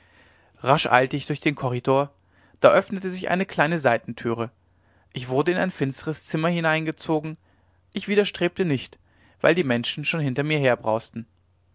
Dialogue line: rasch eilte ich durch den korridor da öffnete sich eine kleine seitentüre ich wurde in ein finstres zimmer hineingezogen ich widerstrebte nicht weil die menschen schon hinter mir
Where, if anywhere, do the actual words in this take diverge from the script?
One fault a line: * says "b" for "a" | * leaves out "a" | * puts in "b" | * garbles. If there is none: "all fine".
all fine